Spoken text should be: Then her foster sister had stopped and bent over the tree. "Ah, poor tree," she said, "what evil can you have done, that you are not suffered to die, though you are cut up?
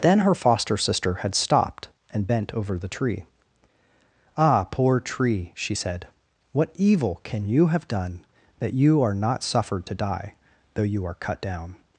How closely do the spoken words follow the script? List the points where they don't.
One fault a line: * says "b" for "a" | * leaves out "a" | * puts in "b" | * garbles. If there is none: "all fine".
* says "down" for "up"